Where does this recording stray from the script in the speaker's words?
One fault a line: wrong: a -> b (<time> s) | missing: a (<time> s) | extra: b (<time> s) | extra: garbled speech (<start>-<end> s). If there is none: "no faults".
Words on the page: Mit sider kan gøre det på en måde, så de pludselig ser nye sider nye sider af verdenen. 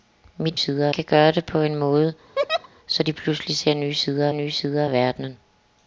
no faults